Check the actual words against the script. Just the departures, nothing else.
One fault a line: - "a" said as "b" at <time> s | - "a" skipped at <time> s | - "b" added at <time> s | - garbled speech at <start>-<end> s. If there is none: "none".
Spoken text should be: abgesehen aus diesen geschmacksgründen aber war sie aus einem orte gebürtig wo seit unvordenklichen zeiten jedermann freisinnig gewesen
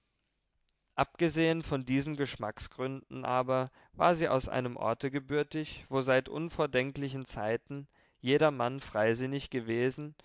- "aus" said as "von" at 1.6 s